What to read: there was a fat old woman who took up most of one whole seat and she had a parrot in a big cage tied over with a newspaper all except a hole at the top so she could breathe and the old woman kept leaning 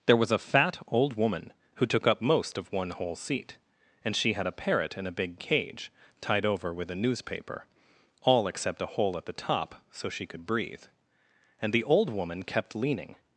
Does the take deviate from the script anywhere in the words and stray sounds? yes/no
no